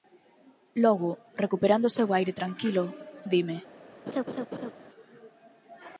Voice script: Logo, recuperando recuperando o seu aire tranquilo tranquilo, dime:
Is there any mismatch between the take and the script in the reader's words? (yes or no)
yes